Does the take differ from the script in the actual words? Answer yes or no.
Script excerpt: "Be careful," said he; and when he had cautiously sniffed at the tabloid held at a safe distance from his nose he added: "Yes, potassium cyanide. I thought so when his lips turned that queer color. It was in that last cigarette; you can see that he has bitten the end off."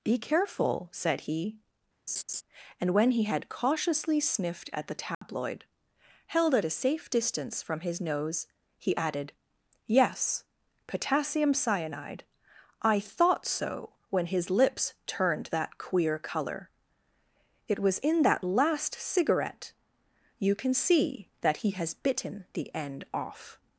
no